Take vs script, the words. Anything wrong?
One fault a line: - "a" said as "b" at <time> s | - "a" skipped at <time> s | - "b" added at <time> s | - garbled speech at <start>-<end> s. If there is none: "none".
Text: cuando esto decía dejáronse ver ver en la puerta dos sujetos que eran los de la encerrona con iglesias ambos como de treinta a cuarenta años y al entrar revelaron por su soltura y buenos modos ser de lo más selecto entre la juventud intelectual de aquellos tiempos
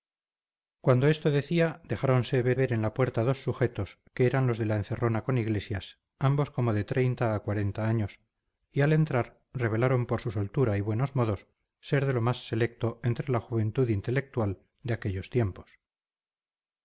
none